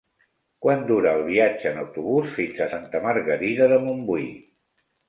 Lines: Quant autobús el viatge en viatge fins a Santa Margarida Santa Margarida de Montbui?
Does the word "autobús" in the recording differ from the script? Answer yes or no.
yes